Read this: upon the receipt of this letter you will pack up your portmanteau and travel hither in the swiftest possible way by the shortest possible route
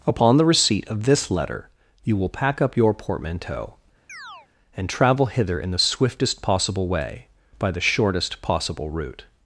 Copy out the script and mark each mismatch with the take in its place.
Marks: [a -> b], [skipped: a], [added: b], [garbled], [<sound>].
upon the receipt of this letter you will pack up your portmanteau [chirp] and travel hither in the swiftest possible way by the shortest possible route